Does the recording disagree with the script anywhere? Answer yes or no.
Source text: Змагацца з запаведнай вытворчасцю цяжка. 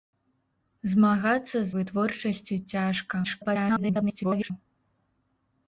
yes